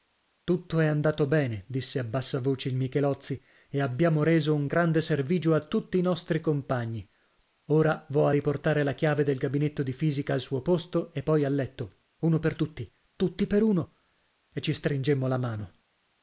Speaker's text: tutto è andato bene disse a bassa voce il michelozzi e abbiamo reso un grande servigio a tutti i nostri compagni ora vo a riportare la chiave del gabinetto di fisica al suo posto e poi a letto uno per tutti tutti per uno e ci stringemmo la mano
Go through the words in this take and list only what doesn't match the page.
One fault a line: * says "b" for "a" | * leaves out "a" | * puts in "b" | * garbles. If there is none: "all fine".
all fine